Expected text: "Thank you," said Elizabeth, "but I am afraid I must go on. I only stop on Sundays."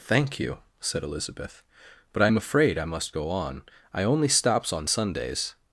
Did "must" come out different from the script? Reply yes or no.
no